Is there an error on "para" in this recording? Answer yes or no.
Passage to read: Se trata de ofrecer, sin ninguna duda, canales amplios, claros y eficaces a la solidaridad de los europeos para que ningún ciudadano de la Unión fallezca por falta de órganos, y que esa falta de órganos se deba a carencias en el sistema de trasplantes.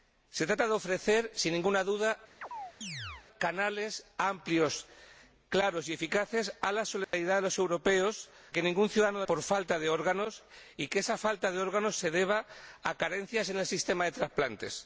yes